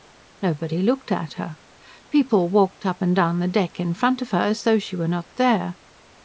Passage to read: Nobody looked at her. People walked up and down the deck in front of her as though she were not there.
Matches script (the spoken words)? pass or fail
pass